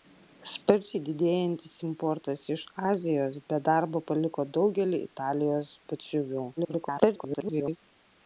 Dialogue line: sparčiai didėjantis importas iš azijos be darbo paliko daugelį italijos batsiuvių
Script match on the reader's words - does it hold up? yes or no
no